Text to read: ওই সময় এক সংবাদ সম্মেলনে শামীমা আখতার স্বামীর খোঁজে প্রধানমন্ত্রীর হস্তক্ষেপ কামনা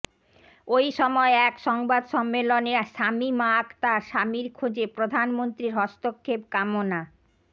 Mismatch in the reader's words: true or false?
false